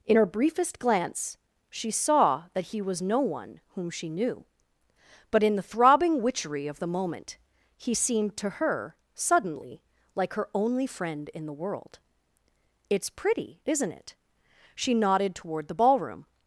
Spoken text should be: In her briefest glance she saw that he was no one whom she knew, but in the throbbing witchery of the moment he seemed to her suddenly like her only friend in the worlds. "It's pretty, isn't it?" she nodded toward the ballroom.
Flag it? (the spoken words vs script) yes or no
yes